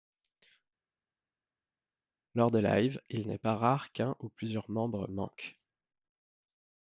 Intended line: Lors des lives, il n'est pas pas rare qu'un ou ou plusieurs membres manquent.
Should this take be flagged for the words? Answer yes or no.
yes